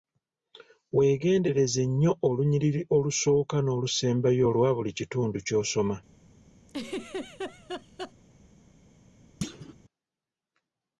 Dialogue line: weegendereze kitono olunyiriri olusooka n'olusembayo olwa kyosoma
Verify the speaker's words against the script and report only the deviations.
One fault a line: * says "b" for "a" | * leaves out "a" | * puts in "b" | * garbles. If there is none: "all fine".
* says "nnyo" for "kitono"
* puts in "buli kitundu"